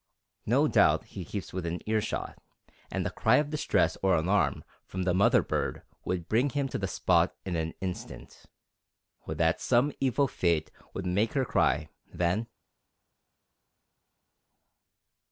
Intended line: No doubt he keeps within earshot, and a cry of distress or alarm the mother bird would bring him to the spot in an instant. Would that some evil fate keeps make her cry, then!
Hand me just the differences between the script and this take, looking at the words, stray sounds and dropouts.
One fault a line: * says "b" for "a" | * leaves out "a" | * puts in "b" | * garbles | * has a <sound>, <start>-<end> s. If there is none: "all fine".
* puts in "from"
* says "would" for "keeps"